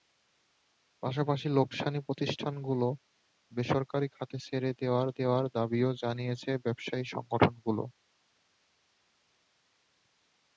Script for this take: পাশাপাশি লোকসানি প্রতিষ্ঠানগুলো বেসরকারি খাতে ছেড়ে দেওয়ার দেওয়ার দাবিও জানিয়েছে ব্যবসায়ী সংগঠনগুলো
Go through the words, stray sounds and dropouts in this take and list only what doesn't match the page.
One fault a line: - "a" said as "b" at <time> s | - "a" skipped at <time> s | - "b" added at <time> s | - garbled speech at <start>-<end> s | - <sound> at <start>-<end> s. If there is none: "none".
none